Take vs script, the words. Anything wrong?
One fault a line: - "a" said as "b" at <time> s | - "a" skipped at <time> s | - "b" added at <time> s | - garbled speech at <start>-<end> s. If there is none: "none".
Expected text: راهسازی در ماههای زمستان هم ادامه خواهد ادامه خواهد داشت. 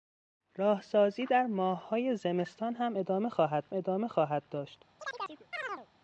none